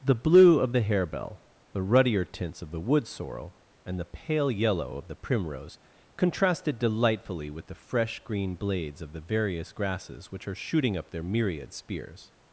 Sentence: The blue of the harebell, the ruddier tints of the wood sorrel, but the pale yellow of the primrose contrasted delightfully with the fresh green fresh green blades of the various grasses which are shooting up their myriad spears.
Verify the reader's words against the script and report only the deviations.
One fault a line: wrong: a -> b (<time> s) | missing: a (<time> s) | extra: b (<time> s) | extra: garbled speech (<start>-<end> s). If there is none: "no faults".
wrong: but -> and (3.8 s)
missing: fresh green (8.5 s)